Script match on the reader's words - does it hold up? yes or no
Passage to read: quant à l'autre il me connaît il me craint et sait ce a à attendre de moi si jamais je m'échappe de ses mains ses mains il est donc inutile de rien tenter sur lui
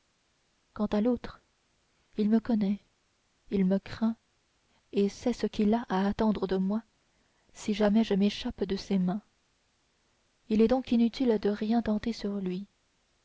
no